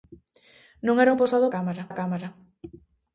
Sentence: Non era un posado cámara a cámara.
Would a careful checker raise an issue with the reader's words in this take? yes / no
no